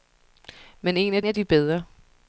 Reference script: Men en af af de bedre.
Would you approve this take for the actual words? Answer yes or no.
yes